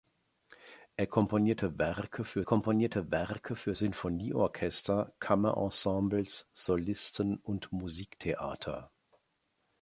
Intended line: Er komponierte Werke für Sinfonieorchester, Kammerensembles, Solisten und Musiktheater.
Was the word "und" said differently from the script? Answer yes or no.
no